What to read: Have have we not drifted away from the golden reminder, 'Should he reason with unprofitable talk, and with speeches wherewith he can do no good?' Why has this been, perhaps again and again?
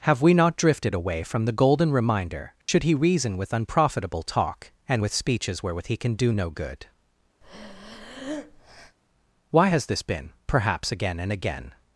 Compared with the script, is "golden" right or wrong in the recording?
right